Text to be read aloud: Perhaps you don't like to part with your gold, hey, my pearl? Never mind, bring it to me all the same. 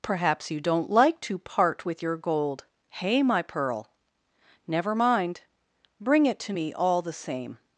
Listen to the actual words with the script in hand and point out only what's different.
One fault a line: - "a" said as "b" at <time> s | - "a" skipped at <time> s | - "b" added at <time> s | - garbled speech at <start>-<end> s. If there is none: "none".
none